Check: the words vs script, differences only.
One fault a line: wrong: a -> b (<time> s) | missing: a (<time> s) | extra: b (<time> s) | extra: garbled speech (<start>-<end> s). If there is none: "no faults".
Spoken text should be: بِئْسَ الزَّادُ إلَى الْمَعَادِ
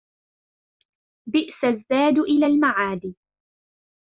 no faults